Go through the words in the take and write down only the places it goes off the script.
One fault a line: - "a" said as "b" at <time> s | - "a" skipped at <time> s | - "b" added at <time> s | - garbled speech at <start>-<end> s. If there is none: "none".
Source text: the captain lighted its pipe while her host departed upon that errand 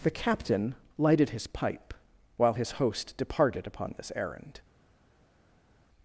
- "its" said as "his" at 1.3 s
- "her" said as "his" at 2.5 s
- "that" said as "this" at 4.0 s